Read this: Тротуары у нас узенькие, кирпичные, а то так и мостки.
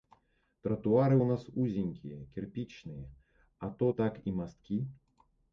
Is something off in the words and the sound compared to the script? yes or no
no